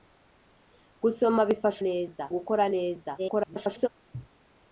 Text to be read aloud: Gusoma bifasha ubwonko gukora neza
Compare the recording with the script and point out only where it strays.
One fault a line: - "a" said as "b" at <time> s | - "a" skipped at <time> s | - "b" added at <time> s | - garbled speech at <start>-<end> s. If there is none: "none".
- "ubwonko" said as "neza" at 1.9 s
- garbled speech at 3.2-3.9 s